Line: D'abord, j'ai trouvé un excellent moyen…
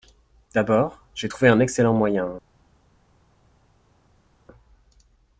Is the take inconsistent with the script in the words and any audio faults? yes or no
no